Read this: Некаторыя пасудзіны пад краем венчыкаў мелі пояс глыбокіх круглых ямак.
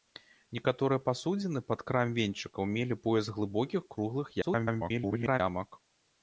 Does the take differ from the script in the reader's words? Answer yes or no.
yes